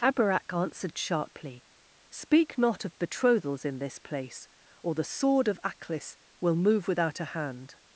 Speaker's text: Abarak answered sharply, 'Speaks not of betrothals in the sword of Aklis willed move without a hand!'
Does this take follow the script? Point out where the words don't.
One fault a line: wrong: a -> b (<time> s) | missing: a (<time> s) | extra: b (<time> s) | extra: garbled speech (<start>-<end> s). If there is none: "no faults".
wrong: Speaks -> Speak (2.1 s)
extra: this place or (3.8 s)
wrong: willed -> will (6.4 s)